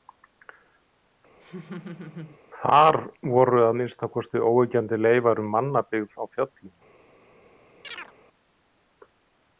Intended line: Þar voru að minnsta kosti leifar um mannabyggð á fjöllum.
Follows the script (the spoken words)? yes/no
no